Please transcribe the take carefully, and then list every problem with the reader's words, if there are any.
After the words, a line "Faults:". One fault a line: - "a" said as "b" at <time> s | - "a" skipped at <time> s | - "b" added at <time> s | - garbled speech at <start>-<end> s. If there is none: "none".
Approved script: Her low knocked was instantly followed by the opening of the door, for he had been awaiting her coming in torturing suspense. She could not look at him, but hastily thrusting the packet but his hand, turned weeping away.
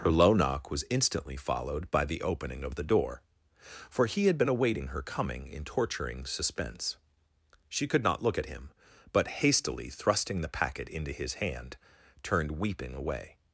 Her low knock was instantly followed by the opening of the door, for he had been awaiting her coming in torturing suspense. She could not look at him, but hastily thrusting the packet into his hand, turned weeping away.
Faults:
- "knocked" said as "knock" at 0.3 s
- "but" said as "into" at 10.9 s